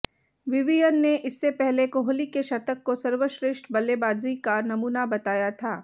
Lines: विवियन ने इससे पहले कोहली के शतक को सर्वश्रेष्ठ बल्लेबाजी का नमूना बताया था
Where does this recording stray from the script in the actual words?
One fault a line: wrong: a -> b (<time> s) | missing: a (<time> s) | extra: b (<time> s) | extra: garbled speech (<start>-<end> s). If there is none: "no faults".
no faults